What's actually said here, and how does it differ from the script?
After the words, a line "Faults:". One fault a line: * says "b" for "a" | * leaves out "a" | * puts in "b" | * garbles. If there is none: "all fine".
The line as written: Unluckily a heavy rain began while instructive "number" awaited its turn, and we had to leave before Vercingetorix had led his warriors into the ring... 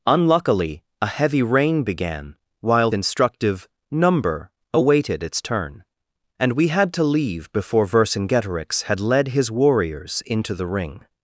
Unluckily a heavy rain began while instructive "number" awaited its turn, and we had to leave before Vercingetorix had led his warriors into the ring...
Faults:
all fine